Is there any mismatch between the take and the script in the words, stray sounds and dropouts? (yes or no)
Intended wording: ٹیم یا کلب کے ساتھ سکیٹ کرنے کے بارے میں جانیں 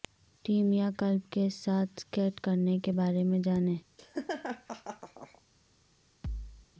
yes